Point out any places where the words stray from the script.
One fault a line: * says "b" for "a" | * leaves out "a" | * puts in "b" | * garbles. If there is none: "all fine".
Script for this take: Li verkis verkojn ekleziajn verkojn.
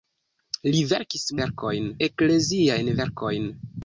all fine